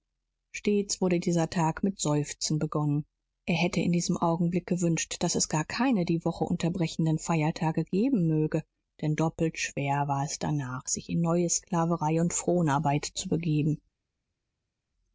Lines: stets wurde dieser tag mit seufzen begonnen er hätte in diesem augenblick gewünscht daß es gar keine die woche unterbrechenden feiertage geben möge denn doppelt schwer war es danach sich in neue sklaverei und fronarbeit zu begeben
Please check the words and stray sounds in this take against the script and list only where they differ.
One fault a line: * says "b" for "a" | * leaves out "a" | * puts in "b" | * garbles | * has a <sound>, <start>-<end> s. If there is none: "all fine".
all fine